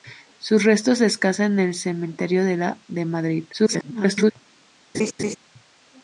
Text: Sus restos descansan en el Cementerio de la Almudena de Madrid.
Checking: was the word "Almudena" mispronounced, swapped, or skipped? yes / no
yes